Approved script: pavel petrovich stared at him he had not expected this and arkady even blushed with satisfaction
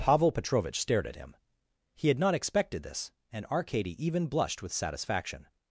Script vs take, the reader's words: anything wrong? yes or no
no